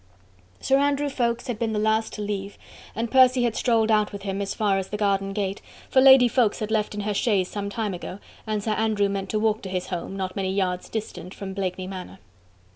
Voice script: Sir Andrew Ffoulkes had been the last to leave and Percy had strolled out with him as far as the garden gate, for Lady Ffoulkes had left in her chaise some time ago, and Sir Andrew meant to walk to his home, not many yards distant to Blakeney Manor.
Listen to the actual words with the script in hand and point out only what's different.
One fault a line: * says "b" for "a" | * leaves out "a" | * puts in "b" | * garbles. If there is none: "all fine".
* says "from" for "to"